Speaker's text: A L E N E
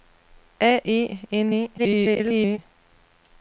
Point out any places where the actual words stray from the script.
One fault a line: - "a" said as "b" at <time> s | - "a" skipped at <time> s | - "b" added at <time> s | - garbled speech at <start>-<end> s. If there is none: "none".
- "L" skipped at 0.8 s
- garbled speech at 1.8-2.6 s